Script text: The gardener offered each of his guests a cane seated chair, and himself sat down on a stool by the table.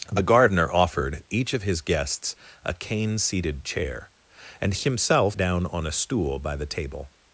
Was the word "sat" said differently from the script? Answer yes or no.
yes